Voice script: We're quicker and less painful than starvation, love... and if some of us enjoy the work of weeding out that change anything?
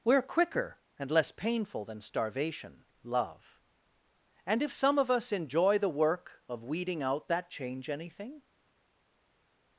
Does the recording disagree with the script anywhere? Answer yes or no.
no